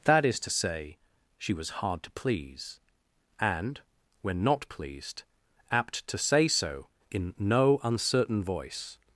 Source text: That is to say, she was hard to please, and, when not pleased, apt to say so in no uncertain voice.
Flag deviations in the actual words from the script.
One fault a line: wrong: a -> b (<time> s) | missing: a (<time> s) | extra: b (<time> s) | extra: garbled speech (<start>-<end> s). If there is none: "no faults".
no faults